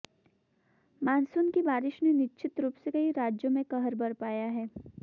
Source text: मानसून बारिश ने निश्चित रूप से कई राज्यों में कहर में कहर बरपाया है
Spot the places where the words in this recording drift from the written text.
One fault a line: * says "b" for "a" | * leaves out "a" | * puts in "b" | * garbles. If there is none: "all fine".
* puts in "की"
* leaves out "में कहर"